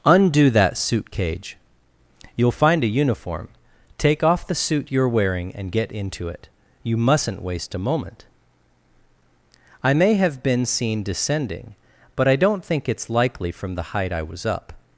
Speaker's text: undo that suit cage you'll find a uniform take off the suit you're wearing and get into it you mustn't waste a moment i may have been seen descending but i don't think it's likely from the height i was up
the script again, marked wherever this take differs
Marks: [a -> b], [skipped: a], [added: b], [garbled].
undo that suit cage you'll find a uniform take off the suit you're wearing and get into it you mustn't waste a moment i may have been seen descending but i don't think it's likely from the height i was up